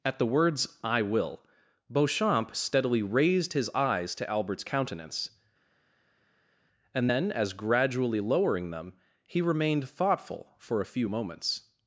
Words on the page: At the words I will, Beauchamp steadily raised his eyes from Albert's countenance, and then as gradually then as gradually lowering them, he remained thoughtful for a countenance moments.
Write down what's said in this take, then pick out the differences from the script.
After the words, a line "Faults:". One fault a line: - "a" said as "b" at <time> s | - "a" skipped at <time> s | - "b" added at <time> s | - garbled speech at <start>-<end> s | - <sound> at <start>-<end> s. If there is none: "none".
At the words I will, Beauchamp steadily raised his eyes to Albert's countenance, and then as gradually lowering them, he remained thoughtful for a few moments.
Faults:
- "from" said as "to" at 4.2 s
- "then as gradually" skipped at 8.2 s
- "countenance" said as "few" at 10.9 s